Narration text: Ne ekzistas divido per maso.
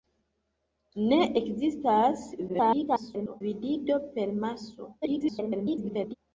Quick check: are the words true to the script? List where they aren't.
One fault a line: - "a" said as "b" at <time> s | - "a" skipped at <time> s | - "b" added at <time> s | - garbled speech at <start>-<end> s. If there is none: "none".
- garbled speech at 2.5-3.4 s
- garbled speech at 5.0-6.1 s